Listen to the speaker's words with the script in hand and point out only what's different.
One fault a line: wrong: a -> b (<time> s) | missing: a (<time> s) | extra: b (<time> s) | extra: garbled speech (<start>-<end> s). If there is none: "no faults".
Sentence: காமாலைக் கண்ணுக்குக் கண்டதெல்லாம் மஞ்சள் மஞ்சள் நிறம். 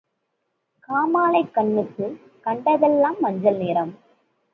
missing: மஞ்சள் (3.6 s)